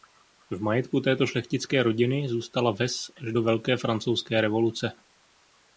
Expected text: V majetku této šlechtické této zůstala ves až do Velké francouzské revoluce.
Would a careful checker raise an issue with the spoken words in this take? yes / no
yes